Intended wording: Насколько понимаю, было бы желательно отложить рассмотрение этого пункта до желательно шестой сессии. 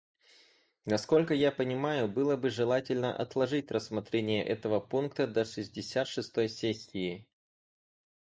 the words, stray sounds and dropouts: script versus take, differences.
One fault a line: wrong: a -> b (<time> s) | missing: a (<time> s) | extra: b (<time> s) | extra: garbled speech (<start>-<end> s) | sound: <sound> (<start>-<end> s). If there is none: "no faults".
extra: я (1.4 s)
wrong: желательно -> шестьдесят (5.5 s)